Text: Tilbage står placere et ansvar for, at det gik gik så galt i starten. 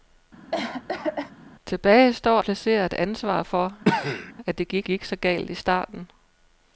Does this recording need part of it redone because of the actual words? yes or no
no